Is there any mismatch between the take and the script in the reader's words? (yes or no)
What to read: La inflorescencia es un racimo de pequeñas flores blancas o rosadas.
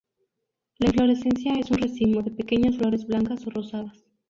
no